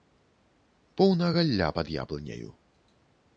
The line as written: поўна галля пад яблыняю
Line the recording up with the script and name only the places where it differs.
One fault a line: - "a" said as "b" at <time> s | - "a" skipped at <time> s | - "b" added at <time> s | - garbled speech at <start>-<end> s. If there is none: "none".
none